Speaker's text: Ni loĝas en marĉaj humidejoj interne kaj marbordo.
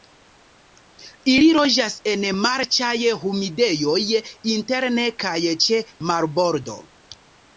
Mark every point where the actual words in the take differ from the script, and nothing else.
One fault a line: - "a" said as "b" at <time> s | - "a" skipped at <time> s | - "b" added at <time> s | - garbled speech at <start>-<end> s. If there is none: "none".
- "Ni" said as "Ili" at 1.3 s
- "ĉe" added at 5.7 s